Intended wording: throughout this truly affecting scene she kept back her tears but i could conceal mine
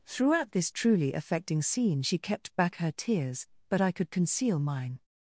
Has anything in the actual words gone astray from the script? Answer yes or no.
no